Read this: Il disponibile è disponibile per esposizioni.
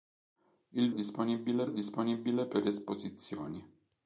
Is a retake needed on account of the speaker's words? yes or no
no